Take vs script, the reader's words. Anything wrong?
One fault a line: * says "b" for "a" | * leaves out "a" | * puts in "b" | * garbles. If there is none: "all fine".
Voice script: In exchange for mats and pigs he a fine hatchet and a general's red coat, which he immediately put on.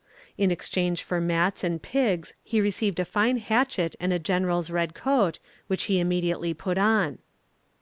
* puts in "received"